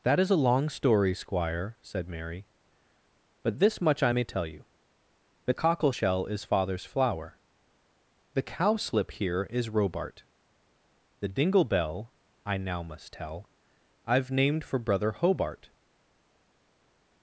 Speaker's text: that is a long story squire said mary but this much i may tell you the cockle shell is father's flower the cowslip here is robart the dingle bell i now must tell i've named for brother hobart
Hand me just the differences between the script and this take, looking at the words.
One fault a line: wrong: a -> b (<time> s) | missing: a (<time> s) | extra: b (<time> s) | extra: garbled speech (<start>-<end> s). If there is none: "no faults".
no faults